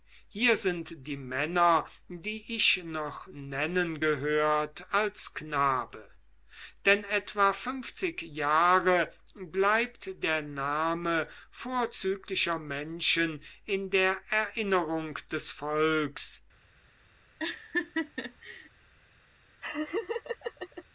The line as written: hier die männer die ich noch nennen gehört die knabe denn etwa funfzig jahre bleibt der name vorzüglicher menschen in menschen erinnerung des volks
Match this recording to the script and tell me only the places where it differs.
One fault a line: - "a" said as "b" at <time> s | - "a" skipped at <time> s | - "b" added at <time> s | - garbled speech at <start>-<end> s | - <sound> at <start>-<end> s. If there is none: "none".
- "sind" added at 0.6 s
- "die" said as "als" at 4.9 s
- "menschen" said as "der" at 13.9 s
- laugh at 17.4-18.7 s
- laugh at 19.6-20.8 s